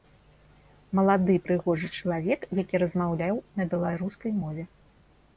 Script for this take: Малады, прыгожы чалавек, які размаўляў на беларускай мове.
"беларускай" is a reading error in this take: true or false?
false